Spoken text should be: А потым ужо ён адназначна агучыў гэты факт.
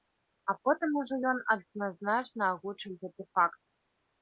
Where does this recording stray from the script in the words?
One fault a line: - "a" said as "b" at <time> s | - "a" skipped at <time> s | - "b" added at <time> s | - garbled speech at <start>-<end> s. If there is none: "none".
none